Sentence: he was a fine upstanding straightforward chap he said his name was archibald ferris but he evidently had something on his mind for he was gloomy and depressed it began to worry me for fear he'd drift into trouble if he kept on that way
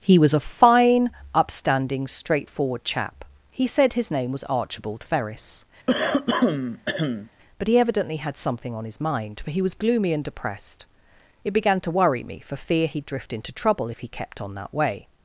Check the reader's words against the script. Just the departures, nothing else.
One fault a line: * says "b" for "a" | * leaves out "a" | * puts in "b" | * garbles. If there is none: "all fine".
all fine